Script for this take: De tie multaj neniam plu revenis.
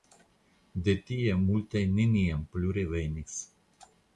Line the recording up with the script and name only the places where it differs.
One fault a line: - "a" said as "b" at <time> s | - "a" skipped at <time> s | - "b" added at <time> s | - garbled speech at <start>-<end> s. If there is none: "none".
none